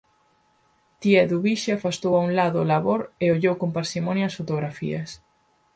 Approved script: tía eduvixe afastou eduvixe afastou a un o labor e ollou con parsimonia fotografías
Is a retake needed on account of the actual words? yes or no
yes